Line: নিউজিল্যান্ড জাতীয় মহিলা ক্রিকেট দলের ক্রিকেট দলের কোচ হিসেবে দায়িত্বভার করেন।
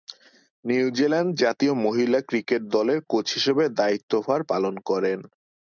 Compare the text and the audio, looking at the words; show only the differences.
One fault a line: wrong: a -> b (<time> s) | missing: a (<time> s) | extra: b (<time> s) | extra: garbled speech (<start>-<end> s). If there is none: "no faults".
missing: ক্রিকেট দলের (3.0 s)
extra: পালন (4.5 s)